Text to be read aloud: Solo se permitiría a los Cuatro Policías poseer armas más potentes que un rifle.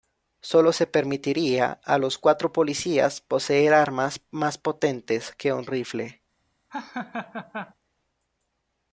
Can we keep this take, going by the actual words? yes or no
yes